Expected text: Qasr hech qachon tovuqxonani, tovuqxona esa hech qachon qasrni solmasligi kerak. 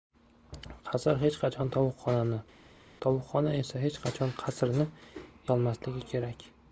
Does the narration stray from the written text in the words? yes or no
no